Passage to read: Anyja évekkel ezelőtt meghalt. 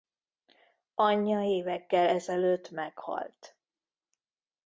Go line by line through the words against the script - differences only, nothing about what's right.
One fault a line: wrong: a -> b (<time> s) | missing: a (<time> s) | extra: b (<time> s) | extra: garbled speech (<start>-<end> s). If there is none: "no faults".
no faults